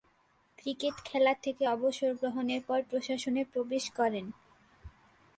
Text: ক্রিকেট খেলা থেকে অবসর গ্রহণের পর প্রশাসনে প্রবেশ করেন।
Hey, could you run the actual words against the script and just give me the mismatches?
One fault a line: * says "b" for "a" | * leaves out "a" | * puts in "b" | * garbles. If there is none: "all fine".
all fine